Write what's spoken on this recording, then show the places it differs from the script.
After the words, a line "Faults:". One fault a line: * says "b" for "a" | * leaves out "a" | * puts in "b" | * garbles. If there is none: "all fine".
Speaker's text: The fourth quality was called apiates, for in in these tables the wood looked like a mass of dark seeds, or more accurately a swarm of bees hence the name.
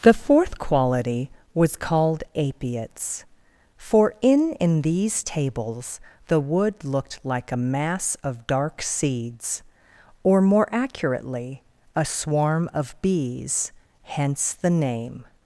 The fourth quality was called apiates, for in in these tables the wood looked like a mass of dark seeds, or more accurately a swarm of bees hence the name.
Faults:
all fine